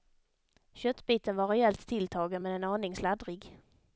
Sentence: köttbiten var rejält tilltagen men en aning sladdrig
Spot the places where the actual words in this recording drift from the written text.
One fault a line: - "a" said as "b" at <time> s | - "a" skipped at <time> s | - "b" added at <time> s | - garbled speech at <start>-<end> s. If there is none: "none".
none